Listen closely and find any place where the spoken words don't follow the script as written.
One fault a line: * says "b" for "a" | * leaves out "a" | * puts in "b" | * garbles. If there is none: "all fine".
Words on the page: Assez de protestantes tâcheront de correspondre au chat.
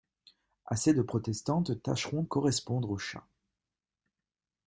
* leaves out "de"